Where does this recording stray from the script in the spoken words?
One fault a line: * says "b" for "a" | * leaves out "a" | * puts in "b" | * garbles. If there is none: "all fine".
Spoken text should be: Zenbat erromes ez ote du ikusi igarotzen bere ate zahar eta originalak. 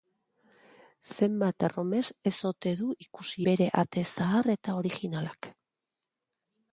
* leaves out "igarotzen"